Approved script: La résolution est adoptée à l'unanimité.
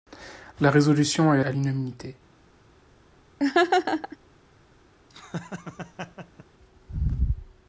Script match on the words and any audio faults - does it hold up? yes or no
no